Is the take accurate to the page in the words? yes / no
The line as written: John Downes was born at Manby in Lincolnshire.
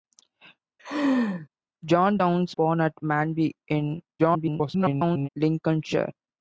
no